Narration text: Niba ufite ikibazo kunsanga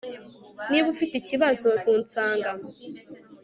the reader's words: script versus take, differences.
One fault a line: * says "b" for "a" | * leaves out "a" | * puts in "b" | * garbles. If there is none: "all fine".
all fine